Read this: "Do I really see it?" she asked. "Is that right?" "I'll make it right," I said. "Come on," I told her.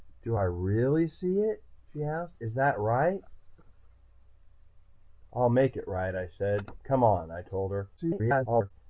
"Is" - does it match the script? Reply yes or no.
yes